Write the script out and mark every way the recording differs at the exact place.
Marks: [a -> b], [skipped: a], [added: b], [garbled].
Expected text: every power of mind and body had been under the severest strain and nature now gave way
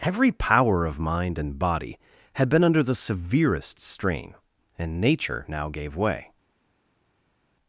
every power of mind and body had been under the severest strain and nature now gave way